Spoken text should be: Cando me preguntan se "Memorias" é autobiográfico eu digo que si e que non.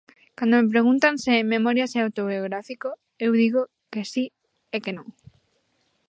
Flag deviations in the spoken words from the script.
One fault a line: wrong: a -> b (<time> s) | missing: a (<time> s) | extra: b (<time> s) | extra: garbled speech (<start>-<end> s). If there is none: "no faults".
no faults